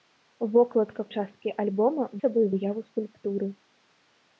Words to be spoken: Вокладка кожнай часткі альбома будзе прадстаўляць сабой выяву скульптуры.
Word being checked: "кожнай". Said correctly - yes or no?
no